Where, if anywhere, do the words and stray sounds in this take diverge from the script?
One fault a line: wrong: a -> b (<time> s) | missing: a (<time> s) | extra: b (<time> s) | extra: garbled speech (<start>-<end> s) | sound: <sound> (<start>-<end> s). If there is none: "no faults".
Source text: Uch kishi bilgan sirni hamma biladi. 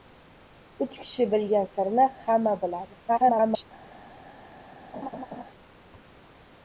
extra: garbled speech (3.1-3.6 s)
sound: laugh (4.9-5.4 s)